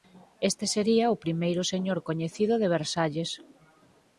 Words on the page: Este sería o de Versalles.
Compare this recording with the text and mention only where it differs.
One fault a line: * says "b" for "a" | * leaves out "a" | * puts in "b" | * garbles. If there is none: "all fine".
* puts in "primeiro señor coñecido"